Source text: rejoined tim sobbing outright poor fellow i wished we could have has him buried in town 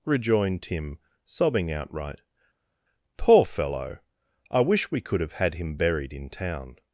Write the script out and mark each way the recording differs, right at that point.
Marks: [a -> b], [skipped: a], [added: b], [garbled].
rejoined tim sobbing outright poor fellow i [wished -> wish] we could have [has -> had] him buried in town